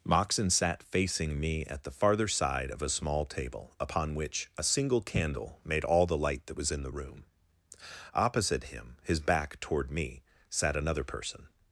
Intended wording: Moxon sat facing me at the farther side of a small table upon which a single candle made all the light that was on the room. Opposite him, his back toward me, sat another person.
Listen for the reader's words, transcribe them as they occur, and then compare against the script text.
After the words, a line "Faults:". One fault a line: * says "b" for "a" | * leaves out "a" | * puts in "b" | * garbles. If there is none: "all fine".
Moxon sat facing me at the farther side of a small table upon which a single candle made all the light that was in the room. Opposite him, his back toward me, sat another person.
Faults:
* says "in" for "on"